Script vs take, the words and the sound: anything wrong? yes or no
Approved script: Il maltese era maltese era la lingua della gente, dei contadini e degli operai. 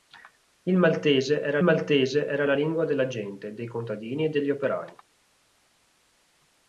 no